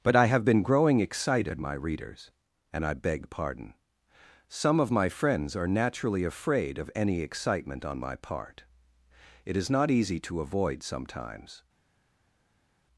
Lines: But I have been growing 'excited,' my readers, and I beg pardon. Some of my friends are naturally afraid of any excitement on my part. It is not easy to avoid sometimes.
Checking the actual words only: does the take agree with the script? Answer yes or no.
yes